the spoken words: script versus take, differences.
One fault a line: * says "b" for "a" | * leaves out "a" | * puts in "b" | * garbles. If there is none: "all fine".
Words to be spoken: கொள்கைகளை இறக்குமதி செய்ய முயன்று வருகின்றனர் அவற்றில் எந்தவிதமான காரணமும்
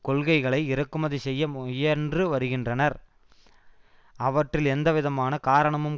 all fine